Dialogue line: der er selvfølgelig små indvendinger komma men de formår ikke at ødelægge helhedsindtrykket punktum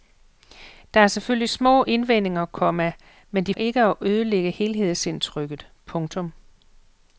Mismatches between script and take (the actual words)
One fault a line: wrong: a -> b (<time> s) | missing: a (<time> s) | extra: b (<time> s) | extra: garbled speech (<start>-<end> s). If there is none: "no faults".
missing: formår (3.5 s)